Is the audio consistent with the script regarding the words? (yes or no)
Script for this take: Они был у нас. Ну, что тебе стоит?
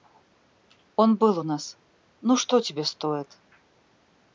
no